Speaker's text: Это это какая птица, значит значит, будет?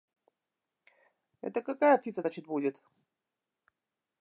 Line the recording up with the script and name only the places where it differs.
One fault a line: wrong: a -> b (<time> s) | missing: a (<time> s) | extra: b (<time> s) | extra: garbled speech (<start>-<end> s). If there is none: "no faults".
missing: это (1.6 s)
missing: значит (2.5 s)